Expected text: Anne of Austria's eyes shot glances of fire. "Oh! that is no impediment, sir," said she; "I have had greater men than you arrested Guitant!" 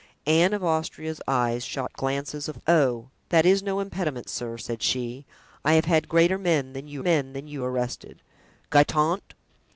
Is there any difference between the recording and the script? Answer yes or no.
yes